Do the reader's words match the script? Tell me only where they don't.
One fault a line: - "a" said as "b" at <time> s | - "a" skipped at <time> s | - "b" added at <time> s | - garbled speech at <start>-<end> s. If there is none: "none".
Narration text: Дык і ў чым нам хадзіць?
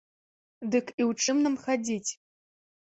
none